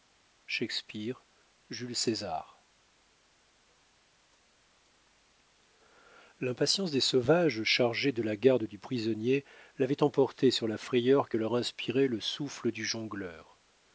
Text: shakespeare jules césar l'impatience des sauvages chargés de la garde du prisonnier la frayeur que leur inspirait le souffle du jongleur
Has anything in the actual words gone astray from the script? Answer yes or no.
yes